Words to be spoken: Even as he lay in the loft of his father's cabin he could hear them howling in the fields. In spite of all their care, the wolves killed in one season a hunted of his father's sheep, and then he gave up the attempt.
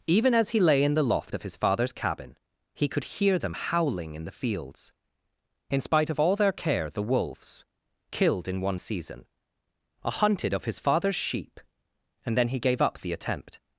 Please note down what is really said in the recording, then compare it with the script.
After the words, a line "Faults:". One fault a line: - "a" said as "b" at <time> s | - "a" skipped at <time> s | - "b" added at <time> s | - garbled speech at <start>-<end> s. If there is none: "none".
Even as he lay in the loft of his father's cabin he could hear them howling in the fields. In spite of all their care, the wolves killed in one season a hunted of his father's sheep, and then he gave up the attempt.
Faults:
none